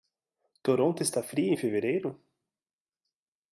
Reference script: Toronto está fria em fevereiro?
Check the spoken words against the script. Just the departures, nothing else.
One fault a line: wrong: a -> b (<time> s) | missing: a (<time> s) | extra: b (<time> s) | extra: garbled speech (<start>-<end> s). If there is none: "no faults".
no faults